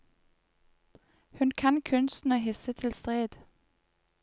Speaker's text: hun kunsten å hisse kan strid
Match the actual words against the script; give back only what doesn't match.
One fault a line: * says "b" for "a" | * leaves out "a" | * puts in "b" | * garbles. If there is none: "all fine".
* puts in "kan"
* says "til" for "kan"